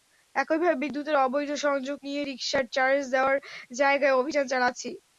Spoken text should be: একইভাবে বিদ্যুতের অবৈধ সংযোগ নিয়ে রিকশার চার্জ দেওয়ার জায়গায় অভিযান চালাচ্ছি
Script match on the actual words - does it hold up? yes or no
yes